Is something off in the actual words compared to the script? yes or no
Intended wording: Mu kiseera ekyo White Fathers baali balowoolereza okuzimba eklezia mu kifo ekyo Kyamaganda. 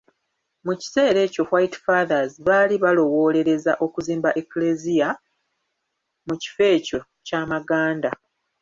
no